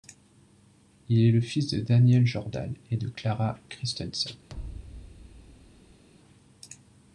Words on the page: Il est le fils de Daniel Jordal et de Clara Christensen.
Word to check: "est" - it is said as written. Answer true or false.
true